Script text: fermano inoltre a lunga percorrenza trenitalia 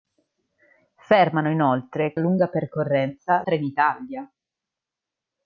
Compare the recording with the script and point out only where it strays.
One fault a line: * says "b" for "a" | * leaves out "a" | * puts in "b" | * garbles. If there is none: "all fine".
all fine